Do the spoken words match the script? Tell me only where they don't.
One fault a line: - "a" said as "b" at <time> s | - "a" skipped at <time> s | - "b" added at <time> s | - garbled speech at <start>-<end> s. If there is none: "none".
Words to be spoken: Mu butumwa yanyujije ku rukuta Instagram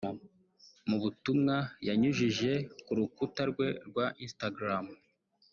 - "rwe rwa" added at 3.5 s